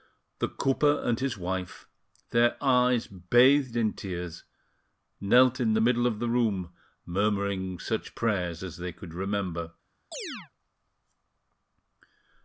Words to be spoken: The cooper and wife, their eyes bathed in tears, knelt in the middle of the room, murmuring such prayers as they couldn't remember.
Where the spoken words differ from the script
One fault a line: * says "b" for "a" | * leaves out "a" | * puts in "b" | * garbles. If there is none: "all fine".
* puts in "his"
* says "could" for "couldn't"